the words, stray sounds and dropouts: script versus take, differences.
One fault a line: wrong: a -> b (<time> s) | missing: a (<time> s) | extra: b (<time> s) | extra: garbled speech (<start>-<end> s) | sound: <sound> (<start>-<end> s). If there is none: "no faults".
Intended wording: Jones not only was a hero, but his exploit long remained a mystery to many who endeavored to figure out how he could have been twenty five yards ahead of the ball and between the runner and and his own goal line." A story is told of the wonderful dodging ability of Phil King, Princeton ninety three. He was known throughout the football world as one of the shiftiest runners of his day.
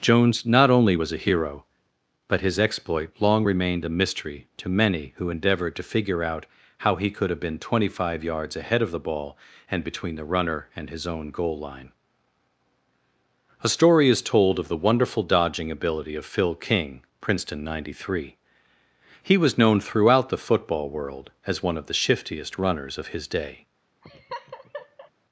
missing: and (10.9 s)
sound: laugh (24.0-25.1 s)